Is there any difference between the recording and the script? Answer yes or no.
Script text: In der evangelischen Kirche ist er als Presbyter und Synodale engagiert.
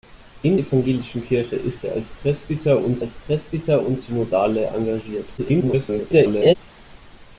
yes